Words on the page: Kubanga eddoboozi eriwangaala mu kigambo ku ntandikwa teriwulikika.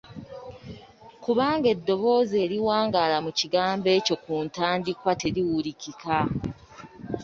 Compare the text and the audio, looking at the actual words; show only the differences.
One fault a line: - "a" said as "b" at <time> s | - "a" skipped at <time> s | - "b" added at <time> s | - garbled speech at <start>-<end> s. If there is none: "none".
- "ekyo" added at 4.0 s